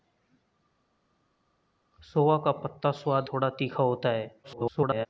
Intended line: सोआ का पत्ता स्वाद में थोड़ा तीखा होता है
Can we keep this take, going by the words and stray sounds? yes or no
no